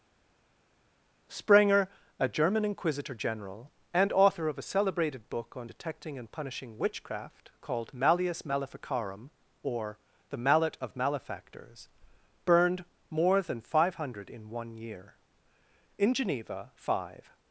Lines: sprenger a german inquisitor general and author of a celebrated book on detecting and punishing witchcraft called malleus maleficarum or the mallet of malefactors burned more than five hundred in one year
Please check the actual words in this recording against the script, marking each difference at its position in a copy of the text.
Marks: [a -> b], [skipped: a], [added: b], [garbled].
sprenger a german inquisitor general and author of a celebrated book on detecting and punishing witchcraft called malleus maleficarum or the mallet of malefactors burned more than five hundred in one year [added: in geneva five]